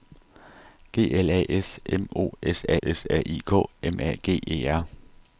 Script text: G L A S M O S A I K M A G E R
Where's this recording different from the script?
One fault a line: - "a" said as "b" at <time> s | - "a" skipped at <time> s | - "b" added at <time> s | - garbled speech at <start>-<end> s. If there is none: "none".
- "S A" added at 2.8 s